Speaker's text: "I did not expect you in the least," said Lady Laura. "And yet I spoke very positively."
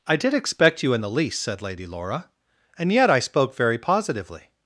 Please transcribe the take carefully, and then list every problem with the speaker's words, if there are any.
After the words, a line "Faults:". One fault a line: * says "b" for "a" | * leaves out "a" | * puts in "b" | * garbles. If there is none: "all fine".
"I did expect you in the least," said Lady Laura. "And yet I spoke very positively."
Faults:
* leaves out "not"